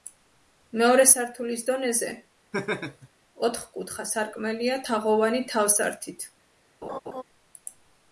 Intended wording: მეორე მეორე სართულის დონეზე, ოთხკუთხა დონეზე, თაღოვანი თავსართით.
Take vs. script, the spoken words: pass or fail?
fail